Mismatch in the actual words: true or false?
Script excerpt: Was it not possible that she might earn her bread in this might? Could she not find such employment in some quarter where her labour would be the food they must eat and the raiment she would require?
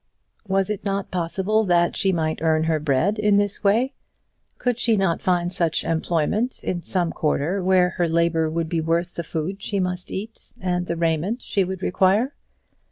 true